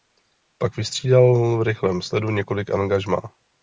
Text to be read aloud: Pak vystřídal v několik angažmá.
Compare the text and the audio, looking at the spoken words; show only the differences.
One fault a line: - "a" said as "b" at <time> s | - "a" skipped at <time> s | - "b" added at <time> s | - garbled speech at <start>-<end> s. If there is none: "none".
- "rychlém sledu" added at 1.6 s